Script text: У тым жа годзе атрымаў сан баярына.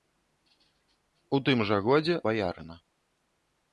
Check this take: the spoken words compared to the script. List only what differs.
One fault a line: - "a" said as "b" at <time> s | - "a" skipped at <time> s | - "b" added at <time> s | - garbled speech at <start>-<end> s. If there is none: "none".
- "атрымаў сан" skipped at 2.1 s